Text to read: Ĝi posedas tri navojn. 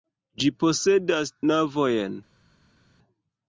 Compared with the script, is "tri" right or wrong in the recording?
wrong